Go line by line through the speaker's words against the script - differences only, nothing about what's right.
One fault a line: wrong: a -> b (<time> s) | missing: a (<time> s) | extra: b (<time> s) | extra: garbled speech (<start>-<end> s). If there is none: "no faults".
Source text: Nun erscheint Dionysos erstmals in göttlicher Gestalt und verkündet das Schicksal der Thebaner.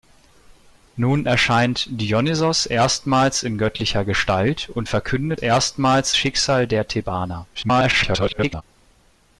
wrong: das -> erstmals (5.4 s)
extra: garbled speech (7.5-8.6 s)